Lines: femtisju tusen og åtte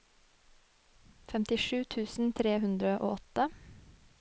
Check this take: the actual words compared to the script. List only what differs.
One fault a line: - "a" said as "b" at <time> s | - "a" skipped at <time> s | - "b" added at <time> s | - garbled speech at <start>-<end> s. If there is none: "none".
- "tre hundre" added at 2.4 s